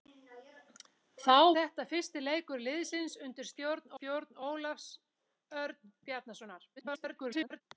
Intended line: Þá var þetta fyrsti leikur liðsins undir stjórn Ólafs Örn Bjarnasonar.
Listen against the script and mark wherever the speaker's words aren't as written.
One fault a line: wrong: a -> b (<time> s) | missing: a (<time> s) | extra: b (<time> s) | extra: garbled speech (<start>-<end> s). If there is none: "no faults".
missing: var (1.4 s)
extra: stjórn (3.9 s)
extra: garbled speech (6.8-7.6 s)